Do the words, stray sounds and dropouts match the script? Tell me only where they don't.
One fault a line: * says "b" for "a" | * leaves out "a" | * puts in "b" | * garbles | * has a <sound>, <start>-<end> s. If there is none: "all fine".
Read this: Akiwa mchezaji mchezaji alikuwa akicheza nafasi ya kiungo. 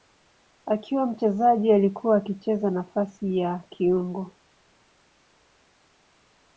* leaves out "mchezaji"